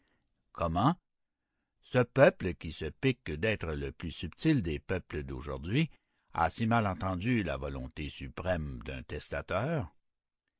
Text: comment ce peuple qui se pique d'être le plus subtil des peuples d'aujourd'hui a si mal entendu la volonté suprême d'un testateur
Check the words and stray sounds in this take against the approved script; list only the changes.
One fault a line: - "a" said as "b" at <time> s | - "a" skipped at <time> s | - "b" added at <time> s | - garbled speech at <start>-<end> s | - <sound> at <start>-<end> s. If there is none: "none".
none